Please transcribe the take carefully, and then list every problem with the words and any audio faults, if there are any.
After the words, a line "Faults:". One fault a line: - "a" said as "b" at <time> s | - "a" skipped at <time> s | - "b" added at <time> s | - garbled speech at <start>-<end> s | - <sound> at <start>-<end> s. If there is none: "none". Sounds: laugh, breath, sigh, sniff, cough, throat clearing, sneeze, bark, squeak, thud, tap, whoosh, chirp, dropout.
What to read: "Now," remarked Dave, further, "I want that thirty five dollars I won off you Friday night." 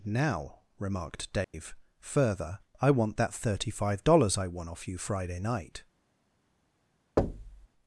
"Now," remarked Dave, further, "I want that thirty five dollars I won off you Friday night."
Faults:
- dropout at 1.4-1.5 s
- thud at 7.2-7.7 s